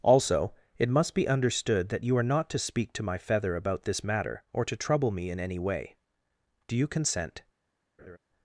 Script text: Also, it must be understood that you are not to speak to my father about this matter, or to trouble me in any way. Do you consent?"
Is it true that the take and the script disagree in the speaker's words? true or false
true